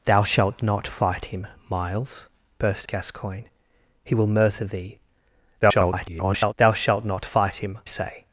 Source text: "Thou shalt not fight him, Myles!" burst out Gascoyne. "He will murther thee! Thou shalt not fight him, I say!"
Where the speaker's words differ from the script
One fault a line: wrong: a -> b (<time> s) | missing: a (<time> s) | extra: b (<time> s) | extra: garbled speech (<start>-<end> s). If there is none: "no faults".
missing: out (2.9 s)
extra: garbled speech (5.6-6.5 s)
missing: I (7.8 s)